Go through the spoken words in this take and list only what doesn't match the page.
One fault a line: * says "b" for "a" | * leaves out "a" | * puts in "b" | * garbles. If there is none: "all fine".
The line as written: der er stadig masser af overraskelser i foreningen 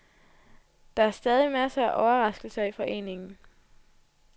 all fine